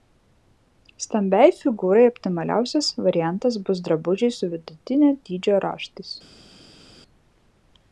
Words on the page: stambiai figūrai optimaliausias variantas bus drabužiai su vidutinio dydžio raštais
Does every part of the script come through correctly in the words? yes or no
yes